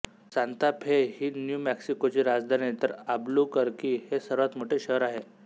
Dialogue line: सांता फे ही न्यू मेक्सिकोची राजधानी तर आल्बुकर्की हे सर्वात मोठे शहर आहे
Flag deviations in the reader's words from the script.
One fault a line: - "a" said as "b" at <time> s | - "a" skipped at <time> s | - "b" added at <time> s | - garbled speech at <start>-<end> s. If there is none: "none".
none